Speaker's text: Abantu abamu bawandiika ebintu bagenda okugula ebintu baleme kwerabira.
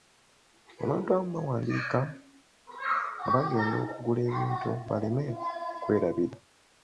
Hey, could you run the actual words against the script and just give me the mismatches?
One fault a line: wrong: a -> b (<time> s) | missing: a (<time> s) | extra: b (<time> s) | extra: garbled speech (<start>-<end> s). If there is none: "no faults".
wrong: ebintu -> nga (3.2 s)